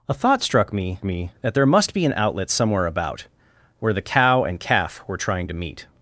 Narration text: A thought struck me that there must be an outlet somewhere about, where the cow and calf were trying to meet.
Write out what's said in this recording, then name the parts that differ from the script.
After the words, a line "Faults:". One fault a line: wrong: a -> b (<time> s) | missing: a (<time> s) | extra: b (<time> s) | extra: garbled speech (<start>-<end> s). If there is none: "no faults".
A thought struck me me that there must be an outlet somewhere about, where the cow and calf were trying to meet.
Faults:
extra: me (1.0 s)